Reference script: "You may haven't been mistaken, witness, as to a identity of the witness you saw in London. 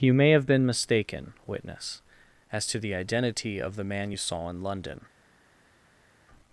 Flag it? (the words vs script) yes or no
yes